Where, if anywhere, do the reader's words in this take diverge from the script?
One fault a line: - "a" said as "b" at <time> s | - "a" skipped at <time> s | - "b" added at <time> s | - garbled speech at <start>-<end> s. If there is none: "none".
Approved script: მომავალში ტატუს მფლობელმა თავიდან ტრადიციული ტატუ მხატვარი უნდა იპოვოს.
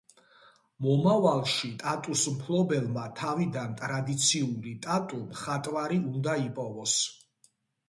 none